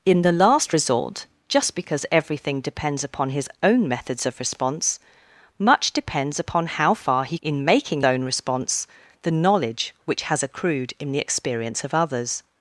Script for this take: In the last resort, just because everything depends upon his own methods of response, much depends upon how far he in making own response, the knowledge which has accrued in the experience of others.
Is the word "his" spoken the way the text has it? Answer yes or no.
yes